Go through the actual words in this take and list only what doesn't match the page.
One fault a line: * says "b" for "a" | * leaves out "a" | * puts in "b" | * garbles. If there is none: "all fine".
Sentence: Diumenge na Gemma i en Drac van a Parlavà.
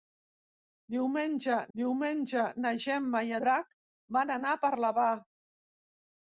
* puts in "diumenge"
* leaves out "en"